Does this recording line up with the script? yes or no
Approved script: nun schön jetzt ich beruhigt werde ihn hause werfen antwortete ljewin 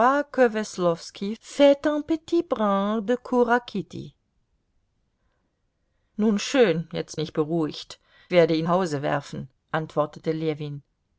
yes